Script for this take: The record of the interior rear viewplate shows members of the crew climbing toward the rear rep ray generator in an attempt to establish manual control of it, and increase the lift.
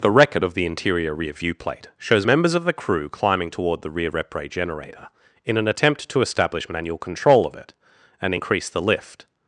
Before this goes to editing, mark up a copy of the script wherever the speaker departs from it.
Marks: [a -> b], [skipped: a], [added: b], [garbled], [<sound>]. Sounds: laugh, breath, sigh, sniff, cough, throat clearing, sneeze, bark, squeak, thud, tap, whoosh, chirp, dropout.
The record of the interior rear viewplate shows members of the crew climbing toward the rear rep ray generator in an attempt to establish manual control of it, and increase the lift.